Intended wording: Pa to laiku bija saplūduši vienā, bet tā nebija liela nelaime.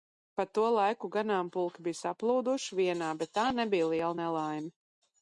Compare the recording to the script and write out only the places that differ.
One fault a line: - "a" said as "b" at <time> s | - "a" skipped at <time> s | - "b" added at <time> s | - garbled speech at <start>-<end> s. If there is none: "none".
- "ganāmpulki" added at 1.1 s